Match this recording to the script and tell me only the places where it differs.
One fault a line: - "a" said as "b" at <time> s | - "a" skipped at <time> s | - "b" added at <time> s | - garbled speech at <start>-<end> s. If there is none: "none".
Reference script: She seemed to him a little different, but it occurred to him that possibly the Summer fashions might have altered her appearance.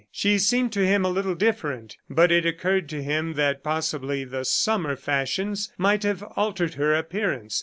none